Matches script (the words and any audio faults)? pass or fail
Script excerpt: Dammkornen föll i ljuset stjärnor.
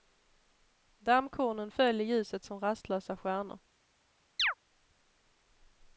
fail